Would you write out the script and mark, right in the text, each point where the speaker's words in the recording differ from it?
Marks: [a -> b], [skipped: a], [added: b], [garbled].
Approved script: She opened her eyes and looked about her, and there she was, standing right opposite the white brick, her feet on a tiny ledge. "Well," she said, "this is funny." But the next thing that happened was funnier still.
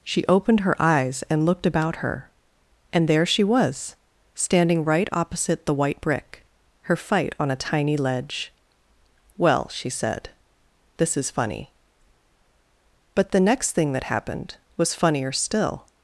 She opened her eyes and looked about her, and there she was, standing right opposite the white brick, her [feet -> fight] on a tiny ledge. "Well," she said, "this is funny." But the next thing that happened was funnier still.